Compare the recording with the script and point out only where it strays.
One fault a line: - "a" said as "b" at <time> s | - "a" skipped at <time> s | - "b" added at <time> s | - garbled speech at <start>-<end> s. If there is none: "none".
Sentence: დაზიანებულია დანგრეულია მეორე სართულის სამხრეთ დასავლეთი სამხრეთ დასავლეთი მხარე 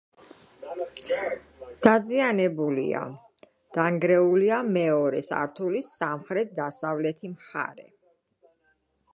- "სამხრეთ დასავლეთი" skipped at 7.3 s